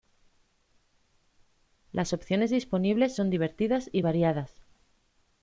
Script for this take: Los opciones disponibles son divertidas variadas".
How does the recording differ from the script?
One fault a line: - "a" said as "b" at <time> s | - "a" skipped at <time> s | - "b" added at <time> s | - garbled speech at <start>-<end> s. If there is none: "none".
- "Los" said as "Las" at 1.9 s
- "y" added at 3.9 s